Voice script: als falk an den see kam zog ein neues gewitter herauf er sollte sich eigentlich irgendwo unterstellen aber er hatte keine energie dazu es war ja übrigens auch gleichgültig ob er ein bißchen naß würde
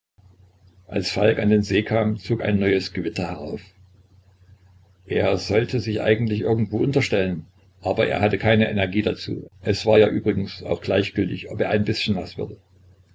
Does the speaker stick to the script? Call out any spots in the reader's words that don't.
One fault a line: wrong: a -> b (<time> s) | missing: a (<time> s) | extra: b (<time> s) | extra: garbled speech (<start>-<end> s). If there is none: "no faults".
no faults